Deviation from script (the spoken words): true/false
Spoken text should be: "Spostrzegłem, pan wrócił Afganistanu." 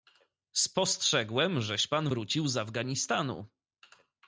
true